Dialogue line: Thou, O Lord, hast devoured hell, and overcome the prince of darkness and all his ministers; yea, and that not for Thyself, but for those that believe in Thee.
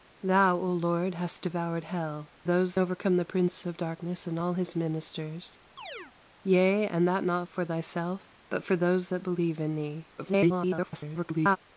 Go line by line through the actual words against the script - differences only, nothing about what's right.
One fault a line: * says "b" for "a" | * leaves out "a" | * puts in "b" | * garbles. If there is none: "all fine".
* says "those" for "and"
* garbles